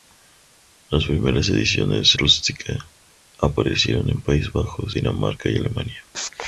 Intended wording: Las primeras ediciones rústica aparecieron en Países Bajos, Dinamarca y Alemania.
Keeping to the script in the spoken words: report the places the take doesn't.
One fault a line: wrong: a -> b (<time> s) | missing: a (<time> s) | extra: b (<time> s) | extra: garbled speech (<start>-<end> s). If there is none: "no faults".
no faults